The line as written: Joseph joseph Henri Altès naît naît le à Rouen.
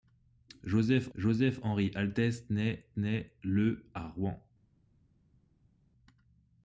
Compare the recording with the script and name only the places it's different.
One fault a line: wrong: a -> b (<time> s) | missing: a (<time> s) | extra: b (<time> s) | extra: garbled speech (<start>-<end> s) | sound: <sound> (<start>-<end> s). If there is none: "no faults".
no faults